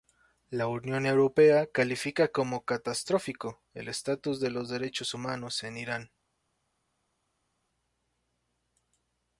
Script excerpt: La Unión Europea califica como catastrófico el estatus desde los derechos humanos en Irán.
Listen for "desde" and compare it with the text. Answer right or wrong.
wrong